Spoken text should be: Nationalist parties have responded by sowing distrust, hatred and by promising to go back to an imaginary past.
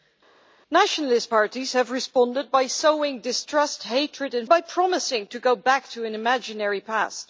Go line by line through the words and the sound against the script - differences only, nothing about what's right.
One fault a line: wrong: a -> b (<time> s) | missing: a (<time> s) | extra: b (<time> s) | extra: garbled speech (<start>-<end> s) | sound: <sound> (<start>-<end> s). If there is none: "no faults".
no faults